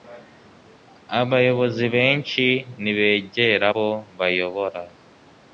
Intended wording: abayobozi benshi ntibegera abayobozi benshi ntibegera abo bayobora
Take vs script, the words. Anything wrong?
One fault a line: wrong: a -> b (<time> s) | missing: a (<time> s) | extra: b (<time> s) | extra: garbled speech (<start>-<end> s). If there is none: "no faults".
missing: abayobozi benshi ntibegera (3.7 s)